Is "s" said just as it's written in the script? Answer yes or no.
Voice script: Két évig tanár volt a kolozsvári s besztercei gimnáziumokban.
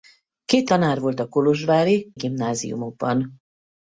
no